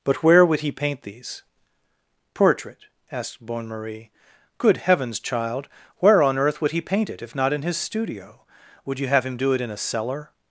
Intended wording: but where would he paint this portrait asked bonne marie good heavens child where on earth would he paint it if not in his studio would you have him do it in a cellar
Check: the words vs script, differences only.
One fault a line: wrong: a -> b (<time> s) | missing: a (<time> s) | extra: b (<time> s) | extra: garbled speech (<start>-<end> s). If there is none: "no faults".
wrong: this -> these (1.0 s)